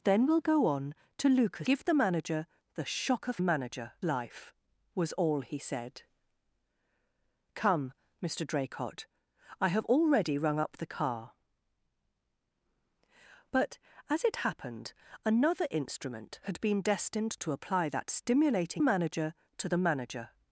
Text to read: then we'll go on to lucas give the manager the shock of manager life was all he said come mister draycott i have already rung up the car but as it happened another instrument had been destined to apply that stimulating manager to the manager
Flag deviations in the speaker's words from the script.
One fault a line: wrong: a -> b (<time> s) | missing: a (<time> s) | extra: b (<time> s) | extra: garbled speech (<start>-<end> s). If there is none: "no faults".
no faults